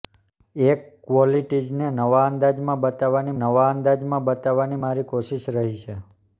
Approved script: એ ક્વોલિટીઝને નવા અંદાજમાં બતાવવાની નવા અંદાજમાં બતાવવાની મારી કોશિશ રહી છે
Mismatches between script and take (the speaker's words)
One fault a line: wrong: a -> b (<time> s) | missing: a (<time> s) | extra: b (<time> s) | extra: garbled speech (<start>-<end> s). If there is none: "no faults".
no faults